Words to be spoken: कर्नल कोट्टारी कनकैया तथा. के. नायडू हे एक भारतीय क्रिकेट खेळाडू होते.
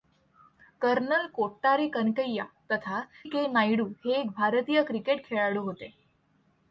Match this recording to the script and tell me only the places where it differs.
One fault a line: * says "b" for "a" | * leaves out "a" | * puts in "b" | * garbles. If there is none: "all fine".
all fine